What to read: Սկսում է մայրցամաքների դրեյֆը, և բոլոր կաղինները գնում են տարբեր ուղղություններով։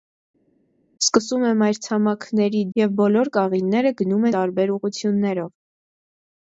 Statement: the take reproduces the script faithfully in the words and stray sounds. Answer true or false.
false